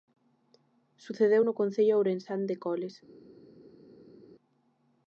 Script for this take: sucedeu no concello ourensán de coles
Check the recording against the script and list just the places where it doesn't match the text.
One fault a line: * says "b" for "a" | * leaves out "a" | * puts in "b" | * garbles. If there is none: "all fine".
all fine